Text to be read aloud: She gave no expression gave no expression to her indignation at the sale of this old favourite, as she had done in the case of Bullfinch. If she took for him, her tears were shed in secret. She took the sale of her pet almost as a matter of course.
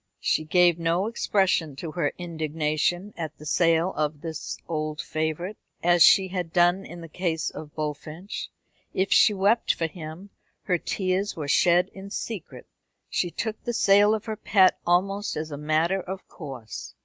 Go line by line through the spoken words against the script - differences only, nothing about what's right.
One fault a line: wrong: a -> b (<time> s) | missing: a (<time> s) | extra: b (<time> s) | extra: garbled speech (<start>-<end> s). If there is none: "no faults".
missing: gave no expression (1.8 s)
wrong: took -> wept (9.3 s)